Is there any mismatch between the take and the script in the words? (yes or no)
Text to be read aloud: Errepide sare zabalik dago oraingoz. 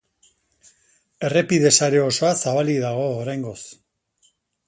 yes